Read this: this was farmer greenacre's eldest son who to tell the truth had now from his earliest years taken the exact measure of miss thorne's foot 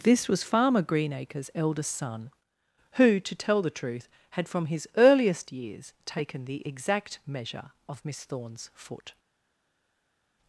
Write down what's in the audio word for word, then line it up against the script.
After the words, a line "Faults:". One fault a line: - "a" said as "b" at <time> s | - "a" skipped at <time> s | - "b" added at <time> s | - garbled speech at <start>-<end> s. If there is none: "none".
this was farmer greenacre's eldest son who to tell the truth had from his earliest years taken the exact measure of miss thorne's foot
Faults:
- "now" skipped at 4.5 s